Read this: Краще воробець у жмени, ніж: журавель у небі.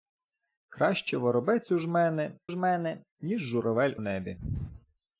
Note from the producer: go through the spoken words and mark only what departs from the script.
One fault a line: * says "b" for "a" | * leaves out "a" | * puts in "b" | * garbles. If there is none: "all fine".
* puts in "жмени"
* leaves out "у"